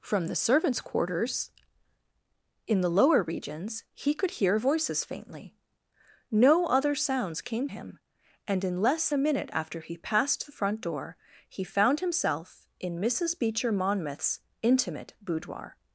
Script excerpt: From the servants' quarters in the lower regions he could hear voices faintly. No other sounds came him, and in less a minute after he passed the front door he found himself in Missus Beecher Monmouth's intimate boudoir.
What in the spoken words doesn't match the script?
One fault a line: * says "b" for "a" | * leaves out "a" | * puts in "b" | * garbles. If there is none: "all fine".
all fine